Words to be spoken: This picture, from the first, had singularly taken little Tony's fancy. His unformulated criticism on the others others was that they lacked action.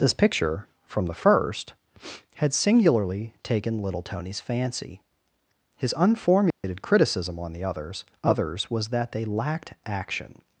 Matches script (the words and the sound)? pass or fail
fail